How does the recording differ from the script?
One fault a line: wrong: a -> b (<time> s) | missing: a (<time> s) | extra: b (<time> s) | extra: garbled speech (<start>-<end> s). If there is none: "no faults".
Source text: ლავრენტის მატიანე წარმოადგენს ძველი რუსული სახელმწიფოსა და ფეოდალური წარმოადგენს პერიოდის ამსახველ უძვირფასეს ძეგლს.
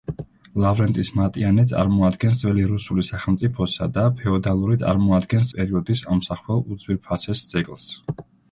no faults